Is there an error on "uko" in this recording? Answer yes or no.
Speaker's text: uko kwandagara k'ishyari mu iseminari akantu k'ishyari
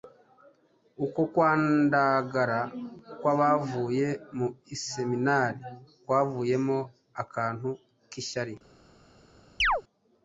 no